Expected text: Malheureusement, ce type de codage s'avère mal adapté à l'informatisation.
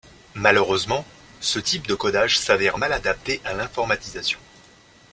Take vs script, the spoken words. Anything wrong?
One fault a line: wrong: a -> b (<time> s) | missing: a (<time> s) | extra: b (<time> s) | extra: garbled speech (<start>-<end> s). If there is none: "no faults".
no faults